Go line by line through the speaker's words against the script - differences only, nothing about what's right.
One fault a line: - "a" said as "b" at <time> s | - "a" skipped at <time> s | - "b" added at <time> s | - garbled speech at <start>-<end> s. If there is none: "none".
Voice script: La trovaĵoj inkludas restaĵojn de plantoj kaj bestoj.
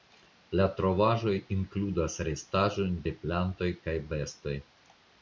none